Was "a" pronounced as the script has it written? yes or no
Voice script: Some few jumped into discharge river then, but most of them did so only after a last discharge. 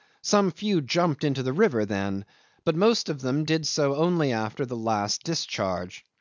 no